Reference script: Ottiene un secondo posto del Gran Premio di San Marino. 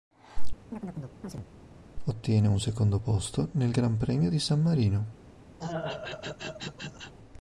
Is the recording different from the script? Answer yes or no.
yes